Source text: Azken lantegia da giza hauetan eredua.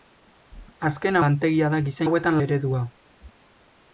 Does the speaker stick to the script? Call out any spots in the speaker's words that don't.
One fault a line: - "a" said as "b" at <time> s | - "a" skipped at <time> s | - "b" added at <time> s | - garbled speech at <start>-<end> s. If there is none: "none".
none